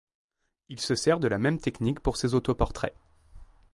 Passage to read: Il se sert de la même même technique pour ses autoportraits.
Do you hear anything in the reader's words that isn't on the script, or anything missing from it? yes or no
yes